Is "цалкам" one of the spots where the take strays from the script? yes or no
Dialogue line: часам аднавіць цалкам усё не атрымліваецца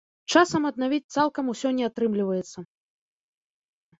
no